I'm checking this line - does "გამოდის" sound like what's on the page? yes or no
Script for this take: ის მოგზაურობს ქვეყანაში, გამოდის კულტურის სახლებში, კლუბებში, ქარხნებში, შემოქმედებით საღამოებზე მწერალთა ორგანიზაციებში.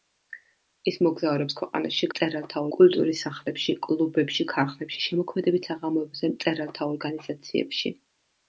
no